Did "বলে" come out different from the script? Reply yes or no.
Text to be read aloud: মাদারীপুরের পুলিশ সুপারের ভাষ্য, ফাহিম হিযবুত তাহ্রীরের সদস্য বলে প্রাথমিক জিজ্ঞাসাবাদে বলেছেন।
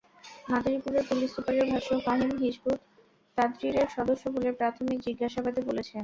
no